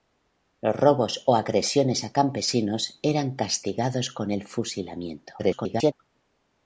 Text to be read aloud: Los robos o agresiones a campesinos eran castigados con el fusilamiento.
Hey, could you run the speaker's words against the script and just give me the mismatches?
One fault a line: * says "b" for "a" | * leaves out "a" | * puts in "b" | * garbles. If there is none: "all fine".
* garbles